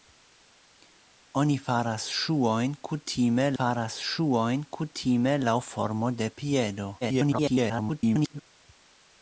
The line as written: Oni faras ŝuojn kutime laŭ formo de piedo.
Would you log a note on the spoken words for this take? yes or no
yes